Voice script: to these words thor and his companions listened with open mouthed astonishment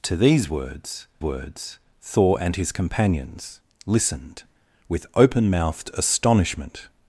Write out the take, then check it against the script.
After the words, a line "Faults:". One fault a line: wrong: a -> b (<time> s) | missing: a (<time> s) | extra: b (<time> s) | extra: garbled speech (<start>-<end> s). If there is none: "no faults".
to these words words thor and his companions listened with open mouthed astonishment
Faults:
extra: words (1.2 s)